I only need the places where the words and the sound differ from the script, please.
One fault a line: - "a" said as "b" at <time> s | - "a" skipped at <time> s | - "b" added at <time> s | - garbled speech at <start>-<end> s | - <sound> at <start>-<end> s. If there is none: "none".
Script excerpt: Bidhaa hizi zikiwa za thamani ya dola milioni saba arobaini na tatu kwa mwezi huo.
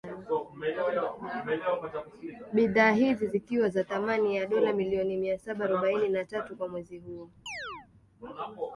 - "mia" added at 5.2 s
- chirp at 7.5-7.9 s